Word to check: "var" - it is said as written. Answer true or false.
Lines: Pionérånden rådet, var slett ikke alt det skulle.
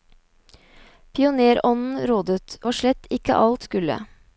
true